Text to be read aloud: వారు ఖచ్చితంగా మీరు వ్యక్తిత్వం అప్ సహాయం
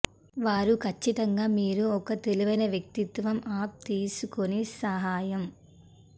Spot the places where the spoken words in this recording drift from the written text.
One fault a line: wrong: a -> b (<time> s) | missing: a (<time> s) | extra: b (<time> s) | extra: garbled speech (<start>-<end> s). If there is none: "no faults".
extra: ఒక తెలివైన (2.0 s)
extra: తీసుకుని (3.9 s)